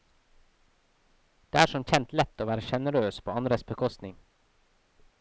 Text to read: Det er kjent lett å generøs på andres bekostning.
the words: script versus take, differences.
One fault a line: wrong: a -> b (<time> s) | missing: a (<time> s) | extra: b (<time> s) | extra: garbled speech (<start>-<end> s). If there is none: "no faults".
extra: som (1.7 s)
extra: være (2.5 s)